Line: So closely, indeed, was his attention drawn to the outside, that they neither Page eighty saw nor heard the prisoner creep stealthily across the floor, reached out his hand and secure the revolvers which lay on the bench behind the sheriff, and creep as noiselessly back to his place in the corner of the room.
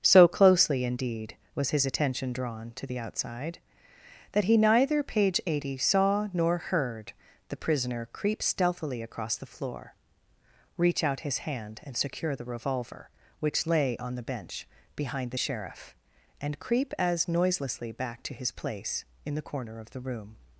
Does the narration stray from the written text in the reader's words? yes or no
yes